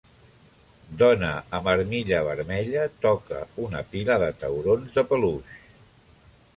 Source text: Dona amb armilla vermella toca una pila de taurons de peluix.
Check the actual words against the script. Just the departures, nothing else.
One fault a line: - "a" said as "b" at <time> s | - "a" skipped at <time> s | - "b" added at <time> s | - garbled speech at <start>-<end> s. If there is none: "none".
none